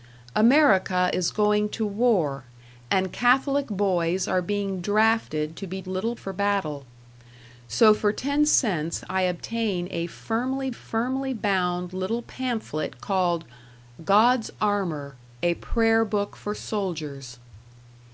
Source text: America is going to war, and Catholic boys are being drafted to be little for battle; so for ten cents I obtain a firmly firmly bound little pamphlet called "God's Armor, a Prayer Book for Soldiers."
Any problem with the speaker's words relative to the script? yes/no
no